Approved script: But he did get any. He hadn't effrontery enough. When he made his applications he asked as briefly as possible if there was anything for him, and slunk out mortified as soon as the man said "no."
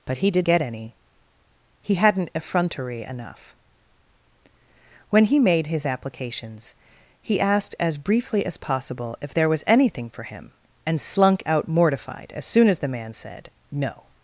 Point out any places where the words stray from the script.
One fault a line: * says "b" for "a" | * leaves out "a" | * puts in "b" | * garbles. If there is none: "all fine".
all fine